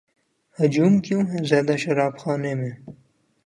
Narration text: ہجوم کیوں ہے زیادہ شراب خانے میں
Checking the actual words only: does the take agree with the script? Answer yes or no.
yes